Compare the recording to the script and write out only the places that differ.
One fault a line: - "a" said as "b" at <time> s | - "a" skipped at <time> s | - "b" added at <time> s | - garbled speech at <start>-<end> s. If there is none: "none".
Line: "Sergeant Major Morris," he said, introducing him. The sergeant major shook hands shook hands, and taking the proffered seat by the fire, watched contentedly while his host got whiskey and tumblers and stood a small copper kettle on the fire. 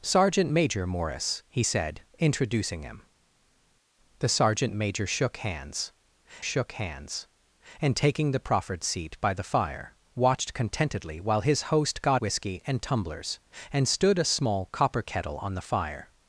none